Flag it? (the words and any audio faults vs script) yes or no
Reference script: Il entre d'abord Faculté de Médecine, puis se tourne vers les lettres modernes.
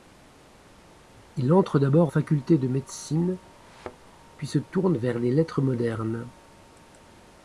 yes